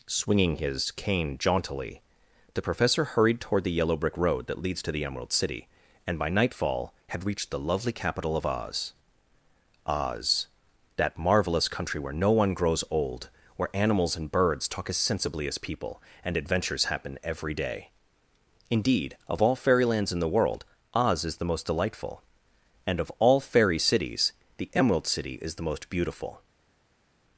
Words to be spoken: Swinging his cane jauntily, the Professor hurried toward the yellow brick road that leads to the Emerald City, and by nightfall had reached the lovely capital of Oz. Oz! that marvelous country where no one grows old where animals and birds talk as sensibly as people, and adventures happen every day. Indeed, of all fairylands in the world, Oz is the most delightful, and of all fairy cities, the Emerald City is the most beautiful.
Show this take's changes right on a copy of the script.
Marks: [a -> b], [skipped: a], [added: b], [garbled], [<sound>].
Swinging his cane jauntily, the Professor hurried toward the yellow brick road that leads to the Emerald City, and by nightfall had reached the lovely capital of Oz. Oz! that marvelous country where no one grows old where animals and birds talk as sensibly as people, and adventures happen every day. Indeed, of all fairylands in the world, Oz is the most delightful, and of all fairy cities, the Emerald City is the most beautiful.